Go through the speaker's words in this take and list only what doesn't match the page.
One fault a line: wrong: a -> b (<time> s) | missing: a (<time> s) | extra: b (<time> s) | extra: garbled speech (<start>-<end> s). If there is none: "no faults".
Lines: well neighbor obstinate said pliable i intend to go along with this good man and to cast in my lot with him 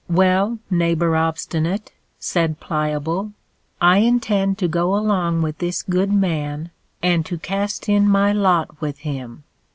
no faults